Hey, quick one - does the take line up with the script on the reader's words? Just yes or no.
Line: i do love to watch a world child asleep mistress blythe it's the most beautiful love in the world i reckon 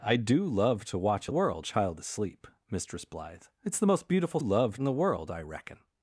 yes